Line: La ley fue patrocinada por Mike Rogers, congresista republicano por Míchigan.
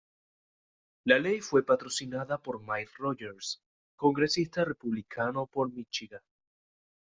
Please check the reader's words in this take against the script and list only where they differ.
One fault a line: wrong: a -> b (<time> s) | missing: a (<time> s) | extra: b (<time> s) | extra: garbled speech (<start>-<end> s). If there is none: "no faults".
no faults